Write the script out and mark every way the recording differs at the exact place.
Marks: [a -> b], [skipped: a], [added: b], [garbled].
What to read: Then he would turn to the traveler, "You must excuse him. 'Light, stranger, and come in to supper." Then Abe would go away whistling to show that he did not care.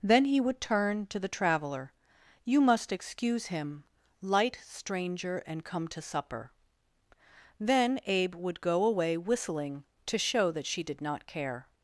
Then he would turn to the traveler, "You must excuse him. 'Light, stranger, and come [skipped: in] to supper." Then Abe would go away whistling to show that [he -> she] did not care.